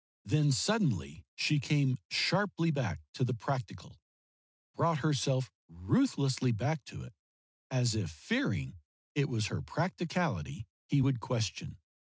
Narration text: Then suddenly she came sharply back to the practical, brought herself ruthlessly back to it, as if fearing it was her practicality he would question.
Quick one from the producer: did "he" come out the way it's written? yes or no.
yes